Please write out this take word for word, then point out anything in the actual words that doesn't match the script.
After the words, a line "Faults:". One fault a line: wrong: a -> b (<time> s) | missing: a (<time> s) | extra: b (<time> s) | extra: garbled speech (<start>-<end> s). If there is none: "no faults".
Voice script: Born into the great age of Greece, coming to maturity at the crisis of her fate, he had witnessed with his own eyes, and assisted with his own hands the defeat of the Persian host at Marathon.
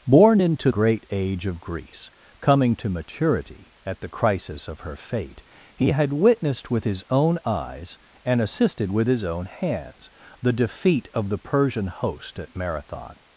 Born into great age of Greece, coming to maturity at the crisis of her fate, he had witnessed with his own eyes, and assisted with his own hands the defeat of the Persian host at Marathon.
Faults:
missing: the (0.7 s)